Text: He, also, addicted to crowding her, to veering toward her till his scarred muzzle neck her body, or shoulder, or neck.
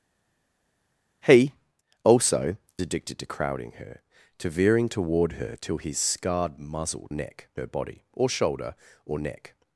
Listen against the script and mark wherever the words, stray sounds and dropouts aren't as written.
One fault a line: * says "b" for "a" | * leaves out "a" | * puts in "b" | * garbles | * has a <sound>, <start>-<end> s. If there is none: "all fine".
all fine